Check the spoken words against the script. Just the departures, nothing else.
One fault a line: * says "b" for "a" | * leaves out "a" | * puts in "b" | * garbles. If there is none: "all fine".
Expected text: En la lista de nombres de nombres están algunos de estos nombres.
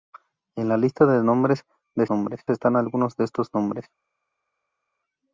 all fine